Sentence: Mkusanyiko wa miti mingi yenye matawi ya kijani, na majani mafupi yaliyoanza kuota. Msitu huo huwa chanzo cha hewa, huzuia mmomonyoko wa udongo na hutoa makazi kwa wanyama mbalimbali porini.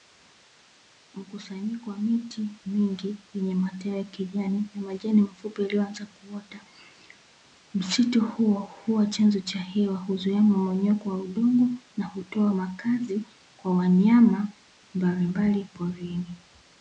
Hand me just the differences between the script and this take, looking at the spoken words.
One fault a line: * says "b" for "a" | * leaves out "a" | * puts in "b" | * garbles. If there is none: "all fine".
all fine